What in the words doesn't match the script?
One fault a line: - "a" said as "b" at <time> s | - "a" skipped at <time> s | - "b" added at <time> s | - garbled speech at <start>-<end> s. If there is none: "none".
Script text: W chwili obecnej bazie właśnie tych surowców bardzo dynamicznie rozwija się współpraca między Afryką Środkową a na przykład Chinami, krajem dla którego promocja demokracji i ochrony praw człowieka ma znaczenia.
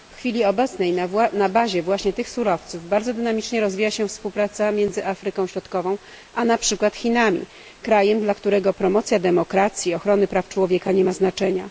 - "na" added at 1.3 s
- "nie" added at 10.9 s